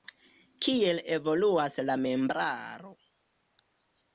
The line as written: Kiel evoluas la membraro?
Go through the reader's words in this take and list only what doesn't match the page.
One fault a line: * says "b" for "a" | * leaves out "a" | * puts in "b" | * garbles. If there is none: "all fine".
all fine